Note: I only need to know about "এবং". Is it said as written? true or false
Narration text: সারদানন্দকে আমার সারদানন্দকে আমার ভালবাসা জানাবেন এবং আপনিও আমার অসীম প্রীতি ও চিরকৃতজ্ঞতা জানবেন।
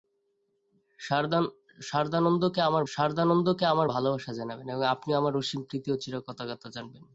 true